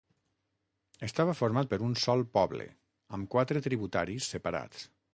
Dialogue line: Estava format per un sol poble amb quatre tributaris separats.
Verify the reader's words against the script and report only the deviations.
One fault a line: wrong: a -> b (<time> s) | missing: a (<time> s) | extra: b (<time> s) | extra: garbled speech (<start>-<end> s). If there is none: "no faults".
no faults